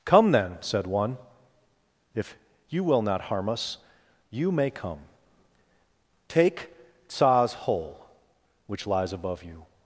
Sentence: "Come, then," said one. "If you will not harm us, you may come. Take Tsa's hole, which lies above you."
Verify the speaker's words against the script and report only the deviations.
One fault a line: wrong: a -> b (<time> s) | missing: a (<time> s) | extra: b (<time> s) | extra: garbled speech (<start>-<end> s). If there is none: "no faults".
no faults